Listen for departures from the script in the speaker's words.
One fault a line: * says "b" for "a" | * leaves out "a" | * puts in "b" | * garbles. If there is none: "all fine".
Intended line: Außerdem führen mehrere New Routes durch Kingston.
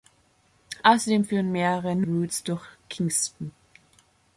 all fine